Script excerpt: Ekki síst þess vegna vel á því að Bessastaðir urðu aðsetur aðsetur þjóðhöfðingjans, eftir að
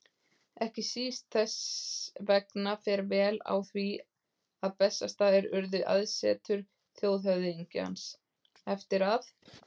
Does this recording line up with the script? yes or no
no